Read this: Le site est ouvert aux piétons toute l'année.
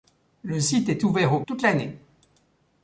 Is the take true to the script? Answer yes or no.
no